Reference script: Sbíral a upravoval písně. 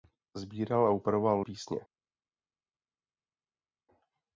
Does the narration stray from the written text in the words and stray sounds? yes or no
no